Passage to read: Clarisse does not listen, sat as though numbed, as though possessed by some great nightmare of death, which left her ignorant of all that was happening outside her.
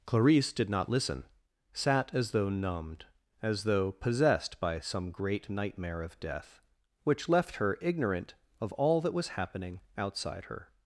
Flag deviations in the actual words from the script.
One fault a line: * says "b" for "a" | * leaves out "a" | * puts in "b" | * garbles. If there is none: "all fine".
* says "did" for "does"